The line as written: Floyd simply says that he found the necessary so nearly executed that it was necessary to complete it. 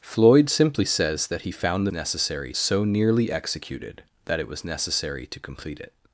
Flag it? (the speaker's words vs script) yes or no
no